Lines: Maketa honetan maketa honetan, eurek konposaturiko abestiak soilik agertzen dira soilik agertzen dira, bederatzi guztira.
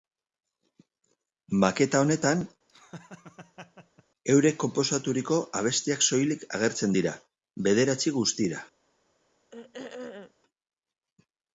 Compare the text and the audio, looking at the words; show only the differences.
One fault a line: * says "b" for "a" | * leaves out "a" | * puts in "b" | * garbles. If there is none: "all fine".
* leaves out "maketa honetan"
* leaves out "soilik agertzen dira"